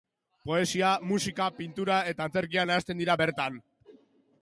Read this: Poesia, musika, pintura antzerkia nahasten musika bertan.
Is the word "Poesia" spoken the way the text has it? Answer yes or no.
yes